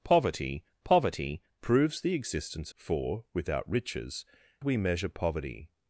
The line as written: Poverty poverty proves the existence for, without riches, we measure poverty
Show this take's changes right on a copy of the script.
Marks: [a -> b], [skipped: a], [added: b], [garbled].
Poverty poverty proves the existence for, without riches, we measure poverty